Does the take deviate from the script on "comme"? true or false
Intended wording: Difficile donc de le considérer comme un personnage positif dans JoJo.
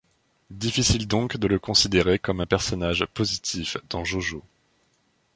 false